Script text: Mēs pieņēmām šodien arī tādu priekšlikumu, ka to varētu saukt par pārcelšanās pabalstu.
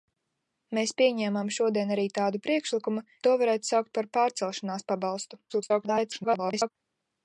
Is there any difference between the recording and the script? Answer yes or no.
yes